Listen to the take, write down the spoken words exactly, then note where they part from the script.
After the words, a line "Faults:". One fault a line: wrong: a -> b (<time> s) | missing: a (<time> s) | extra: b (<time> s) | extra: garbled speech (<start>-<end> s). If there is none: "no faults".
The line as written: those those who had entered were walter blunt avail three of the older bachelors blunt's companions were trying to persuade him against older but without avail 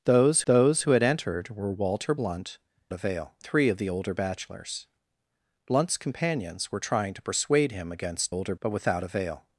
those those who had entered were walter blunt avail three of the older bachelors blunt's companions were trying to persuade him against older but without avail
Faults:
no faults